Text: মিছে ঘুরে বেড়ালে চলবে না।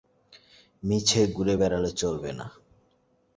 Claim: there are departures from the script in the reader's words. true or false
false